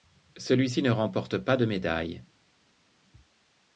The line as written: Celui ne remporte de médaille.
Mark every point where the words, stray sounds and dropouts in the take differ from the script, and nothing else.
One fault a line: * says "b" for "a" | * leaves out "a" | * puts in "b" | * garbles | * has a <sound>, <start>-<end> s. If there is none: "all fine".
* puts in "ci"
* puts in "pas"